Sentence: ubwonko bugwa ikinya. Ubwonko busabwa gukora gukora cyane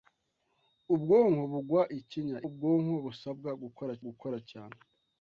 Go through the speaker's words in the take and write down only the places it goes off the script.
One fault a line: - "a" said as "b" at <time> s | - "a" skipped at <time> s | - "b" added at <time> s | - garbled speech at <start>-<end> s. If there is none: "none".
none